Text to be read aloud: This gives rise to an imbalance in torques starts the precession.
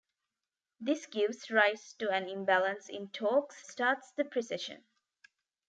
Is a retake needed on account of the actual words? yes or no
no